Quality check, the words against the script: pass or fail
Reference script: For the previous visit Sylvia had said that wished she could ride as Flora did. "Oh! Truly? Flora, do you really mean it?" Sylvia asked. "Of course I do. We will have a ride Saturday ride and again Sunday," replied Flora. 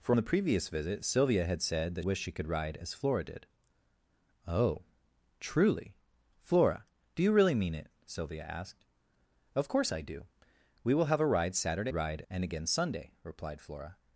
pass